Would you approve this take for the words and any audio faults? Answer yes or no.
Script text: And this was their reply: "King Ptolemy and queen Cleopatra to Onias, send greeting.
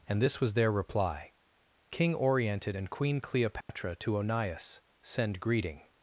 no